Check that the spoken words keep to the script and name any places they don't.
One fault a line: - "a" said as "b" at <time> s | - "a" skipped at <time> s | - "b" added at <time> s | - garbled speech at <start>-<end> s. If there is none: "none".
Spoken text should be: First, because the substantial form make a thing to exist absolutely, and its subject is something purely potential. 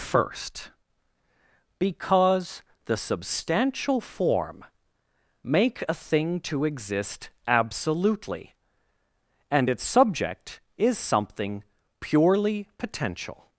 none